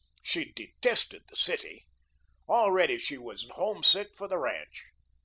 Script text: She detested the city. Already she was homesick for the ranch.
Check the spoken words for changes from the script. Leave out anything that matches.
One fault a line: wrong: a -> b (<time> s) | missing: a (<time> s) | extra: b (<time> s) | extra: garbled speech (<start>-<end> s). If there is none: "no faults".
no faults